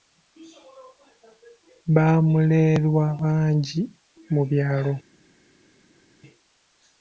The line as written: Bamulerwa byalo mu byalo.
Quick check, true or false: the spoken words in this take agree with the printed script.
false